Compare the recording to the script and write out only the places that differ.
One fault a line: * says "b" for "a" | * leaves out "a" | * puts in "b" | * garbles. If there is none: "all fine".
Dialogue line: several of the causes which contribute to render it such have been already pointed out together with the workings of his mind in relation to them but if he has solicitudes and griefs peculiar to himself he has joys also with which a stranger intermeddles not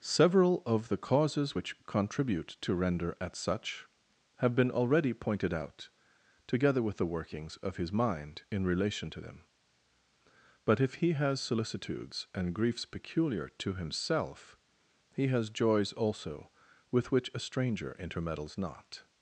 * says "at" for "it"